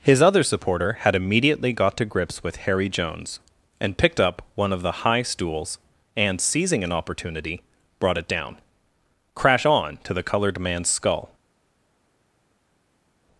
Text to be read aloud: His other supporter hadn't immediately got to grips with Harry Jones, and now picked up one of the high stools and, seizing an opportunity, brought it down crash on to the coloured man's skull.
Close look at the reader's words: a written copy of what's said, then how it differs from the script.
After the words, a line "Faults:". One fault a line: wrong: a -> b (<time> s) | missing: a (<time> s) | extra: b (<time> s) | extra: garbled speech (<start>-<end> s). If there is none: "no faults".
His other supporter had immediately got to grips with Harry Jones, and picked up one of the high stools and, seizing an opportunity, brought it down crash on to the coloured man's skull.
Faults:
wrong: hadn't -> had (1.0 s)
missing: now (4.0 s)